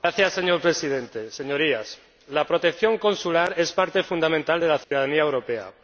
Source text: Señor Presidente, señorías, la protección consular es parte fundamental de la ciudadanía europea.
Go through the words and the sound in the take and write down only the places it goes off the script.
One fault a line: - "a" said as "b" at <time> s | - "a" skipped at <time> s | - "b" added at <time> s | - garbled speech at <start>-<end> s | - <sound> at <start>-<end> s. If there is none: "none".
- dropout at 4.8-4.9 s